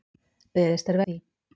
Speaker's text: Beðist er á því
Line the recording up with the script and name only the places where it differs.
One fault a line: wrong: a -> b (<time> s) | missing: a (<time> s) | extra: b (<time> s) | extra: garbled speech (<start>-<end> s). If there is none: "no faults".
no faults